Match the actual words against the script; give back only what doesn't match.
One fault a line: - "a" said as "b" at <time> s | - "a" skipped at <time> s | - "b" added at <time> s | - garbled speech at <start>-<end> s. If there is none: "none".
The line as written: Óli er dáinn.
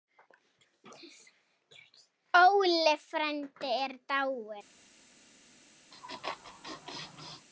- "frændi" added at 3.1 s